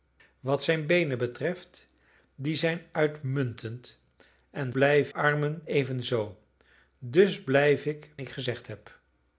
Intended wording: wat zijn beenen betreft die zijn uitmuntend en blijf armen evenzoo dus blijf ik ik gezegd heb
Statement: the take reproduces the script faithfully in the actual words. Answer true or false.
true